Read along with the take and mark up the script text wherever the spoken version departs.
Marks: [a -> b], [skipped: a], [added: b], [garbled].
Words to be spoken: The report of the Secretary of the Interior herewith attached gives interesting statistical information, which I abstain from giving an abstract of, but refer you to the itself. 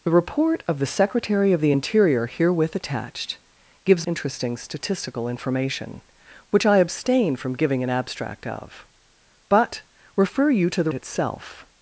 The report of the Secretary of the Interior herewith attached gives interesting statistical information, which I abstain from giving an abstract of, but refer you to the itself.